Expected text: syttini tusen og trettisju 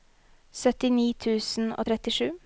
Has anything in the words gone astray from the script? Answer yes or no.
no